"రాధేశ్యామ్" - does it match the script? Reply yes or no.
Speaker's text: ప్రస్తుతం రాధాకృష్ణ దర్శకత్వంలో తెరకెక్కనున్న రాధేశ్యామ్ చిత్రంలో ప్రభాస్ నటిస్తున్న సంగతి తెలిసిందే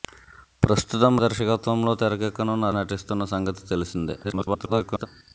no